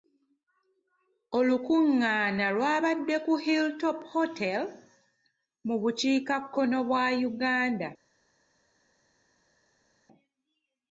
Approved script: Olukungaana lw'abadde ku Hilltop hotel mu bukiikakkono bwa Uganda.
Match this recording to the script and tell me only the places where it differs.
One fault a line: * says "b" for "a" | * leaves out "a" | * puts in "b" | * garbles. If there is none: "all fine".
all fine